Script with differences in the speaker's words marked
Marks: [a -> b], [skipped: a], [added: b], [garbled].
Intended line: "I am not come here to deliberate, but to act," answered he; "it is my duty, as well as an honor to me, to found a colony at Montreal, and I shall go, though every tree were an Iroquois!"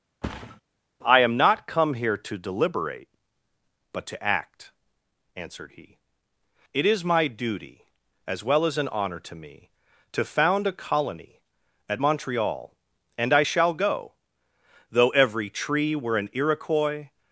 "I am not come here to deliberate, but to act," answered he; "it is my duty, as well as an honor to me, to found a colony at Montreal, and I shall go, though every tree were an Iroquois!"